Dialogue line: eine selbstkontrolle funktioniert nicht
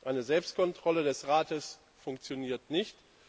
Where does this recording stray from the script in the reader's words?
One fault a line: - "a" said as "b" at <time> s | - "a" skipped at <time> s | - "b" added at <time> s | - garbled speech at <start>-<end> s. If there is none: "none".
- "des rates" added at 1.0 s